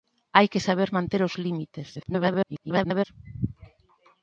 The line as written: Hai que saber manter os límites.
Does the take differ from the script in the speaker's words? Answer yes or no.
yes